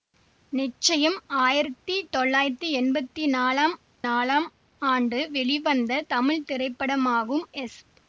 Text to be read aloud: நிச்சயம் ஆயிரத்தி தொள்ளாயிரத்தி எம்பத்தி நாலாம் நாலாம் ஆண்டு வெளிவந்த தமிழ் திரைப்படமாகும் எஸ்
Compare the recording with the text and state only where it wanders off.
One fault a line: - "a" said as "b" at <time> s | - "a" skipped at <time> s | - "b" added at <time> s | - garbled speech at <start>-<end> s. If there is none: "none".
none